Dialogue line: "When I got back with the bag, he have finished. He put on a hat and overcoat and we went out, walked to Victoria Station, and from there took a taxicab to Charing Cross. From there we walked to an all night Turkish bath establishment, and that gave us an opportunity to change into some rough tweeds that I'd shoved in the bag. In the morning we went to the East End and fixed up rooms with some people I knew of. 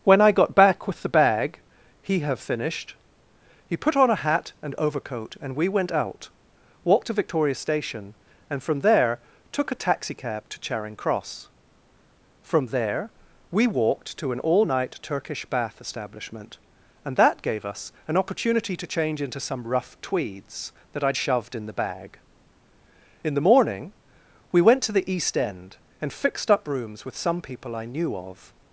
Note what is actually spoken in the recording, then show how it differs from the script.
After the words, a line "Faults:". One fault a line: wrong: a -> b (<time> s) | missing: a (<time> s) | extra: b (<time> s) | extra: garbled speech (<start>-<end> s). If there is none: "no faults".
"When I got back with the bag, he have finished. He put on a hat and overcoat and we went out, walked to Victoria Station, and from there took a taxicab to Charing Cross. From there we walked to an all night Turkish bath establishment, and that gave us an opportunity to change into some rough tweeds that I'd shoved in the bag. In the morning we went to the East End and fixed up rooms with some people I knew of.
Faults:
no faults